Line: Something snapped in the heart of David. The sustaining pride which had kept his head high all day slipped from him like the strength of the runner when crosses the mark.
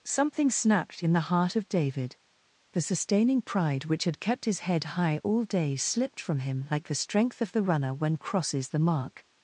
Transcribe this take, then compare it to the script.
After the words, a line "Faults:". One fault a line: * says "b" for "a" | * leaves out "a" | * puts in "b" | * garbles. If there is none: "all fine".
Something snapped in the heart of David. The sustaining pride which had kept his head high all day slipped from him like the strength of the runner when crosses the mark.
Faults:
all fine